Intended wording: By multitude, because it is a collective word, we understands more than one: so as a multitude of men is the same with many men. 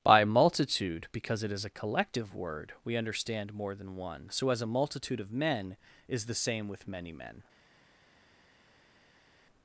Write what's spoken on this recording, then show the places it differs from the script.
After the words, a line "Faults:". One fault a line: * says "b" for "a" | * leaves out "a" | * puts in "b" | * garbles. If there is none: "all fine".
By multitude, because it is a collective word, we understand more than one: so as a multitude of men is the same with many men.
Faults:
* says "understand" for "understands"